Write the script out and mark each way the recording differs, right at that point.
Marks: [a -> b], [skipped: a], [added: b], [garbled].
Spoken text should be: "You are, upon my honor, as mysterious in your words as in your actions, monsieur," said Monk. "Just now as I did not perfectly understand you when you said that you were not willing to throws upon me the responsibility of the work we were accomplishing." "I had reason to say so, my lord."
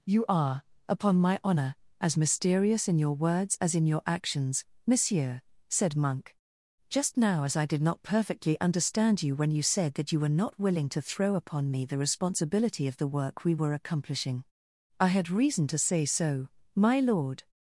"You are, upon my honor, as mysterious in your words as in your actions, monsieur," said Monk. "Just now as I did not perfectly understand you when you said that you were not willing to [throws -> throw] upon me the responsibility of the work we were accomplishing." "I had reason to say so, my lord."